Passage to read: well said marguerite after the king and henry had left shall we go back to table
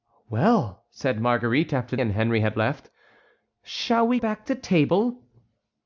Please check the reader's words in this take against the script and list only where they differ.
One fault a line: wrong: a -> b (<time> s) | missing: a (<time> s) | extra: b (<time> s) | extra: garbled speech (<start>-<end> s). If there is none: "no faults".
missing: the king (1.9 s)
missing: go (4.2 s)